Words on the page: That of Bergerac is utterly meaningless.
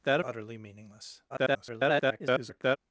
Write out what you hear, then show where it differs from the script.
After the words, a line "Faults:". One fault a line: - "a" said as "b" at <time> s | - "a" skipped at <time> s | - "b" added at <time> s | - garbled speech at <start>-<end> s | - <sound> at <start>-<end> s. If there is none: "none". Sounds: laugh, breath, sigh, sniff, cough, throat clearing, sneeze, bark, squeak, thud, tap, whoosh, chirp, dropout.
That utterly meaningless. [garbled]
Faults:
- "of Bergerac is" skipped at 0.2 s
- garbled speech at 1.3-2.8 s